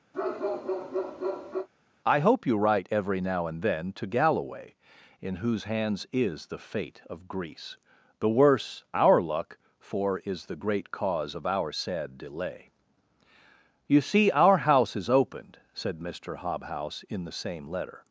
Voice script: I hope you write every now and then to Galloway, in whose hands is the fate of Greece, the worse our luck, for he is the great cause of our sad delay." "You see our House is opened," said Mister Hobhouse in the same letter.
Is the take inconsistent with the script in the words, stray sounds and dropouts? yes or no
yes